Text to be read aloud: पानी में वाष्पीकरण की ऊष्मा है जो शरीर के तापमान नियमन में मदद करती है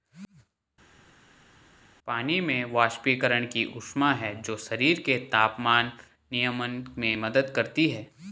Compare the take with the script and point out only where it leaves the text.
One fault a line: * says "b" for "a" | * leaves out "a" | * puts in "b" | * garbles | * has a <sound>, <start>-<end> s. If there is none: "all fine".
all fine